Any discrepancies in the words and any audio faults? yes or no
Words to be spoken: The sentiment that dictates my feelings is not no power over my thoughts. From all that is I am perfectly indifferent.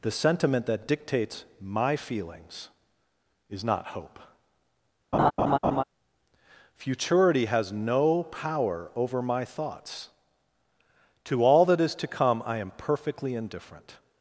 yes